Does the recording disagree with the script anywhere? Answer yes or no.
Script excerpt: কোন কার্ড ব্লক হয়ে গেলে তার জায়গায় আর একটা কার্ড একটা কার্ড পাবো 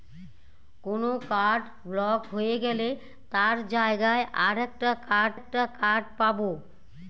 no